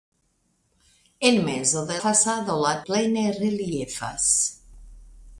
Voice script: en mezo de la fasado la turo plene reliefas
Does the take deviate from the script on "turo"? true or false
true